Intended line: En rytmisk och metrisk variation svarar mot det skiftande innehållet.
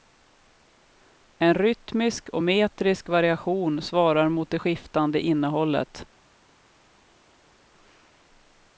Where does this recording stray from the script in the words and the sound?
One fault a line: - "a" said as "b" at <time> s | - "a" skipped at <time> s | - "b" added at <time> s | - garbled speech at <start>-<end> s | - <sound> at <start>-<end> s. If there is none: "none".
none